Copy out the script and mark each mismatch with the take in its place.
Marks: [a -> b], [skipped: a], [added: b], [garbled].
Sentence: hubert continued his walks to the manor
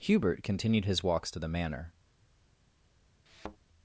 hubert continued his walks to the manor